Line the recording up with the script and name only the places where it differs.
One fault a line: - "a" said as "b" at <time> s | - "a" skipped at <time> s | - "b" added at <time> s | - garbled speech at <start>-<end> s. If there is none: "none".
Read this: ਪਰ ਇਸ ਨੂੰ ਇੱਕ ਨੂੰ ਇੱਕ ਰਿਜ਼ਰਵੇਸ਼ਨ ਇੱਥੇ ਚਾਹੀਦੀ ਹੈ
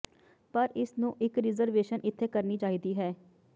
- "ਨੂੰ ਇੱਕ" skipped at 1.4 s
- "ਕਰਨੀ" added at 2.3 s